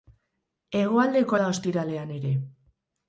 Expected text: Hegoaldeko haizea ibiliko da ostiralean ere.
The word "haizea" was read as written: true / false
false